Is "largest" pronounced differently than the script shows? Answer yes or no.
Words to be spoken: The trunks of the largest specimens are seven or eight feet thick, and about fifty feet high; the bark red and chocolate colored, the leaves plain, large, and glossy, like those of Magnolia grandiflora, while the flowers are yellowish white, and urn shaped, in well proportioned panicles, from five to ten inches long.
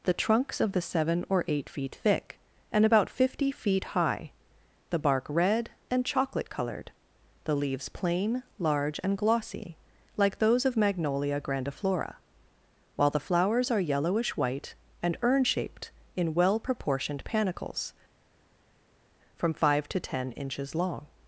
yes